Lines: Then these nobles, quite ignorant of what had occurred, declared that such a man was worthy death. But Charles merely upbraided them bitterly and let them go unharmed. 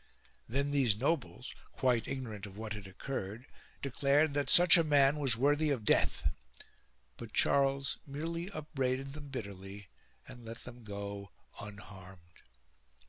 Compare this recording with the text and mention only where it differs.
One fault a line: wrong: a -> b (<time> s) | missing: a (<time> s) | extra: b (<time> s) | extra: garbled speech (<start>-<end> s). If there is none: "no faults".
extra: of (5.7 s)